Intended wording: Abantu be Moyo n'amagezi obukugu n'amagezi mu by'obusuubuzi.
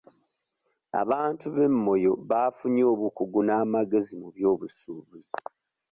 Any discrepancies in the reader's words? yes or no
yes